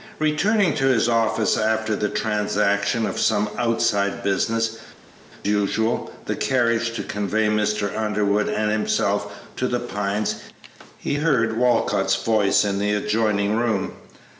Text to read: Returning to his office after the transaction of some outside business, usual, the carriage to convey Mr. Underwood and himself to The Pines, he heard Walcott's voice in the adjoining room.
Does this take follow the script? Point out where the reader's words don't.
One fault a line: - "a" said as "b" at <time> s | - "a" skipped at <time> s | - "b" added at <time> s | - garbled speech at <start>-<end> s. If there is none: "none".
none